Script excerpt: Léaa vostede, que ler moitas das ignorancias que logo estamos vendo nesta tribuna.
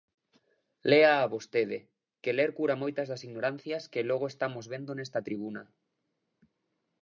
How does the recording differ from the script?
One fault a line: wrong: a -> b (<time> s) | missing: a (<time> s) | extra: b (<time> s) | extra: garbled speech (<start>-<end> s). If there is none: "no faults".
extra: cura (2.6 s)